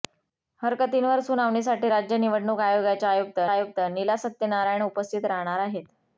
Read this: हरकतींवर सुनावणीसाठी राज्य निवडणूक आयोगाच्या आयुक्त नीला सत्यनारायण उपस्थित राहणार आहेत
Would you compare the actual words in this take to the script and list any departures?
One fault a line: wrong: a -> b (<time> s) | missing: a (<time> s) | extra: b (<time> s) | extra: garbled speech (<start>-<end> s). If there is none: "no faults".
extra: आयुक्त (3.5 s)